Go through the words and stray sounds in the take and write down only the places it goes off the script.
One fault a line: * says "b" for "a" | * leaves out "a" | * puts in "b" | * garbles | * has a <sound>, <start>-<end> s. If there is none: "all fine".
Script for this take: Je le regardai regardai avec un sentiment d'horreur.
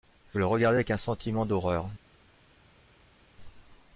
* leaves out "regardai"